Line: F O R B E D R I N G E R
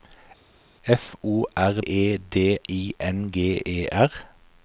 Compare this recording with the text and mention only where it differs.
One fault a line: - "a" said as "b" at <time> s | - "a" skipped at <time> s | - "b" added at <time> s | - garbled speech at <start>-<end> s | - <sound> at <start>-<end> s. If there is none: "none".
- "B" skipped at 1.8 s
- "R" skipped at 2.6 s